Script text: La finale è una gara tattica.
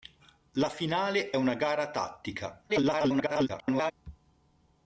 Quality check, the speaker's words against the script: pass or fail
fail